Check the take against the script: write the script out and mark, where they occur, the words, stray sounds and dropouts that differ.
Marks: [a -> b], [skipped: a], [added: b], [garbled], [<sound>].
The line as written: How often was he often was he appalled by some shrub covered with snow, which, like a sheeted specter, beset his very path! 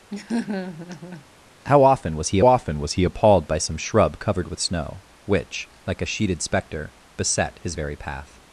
[laugh] How often was he often was he appalled by some shrub covered with snow, which, like a sheeted specter, beset his very path!